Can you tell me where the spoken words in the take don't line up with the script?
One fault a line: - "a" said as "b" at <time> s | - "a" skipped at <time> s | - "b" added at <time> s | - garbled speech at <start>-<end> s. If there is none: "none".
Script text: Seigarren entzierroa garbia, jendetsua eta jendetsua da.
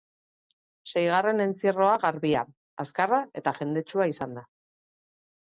- "jendetsua" said as "azkarra" at 2.9 s
- "izan" added at 4.2 s